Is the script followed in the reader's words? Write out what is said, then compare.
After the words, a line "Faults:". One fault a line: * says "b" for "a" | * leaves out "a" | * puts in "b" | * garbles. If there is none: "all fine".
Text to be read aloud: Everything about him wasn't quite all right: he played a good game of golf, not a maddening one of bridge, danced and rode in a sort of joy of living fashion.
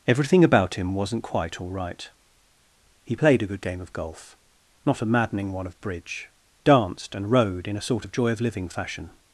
Everything about him wasn't quite all right: he played a good game of golf, not a maddening one of bridge, danced and rode in a sort of joy of living fashion.
Faults:
all fine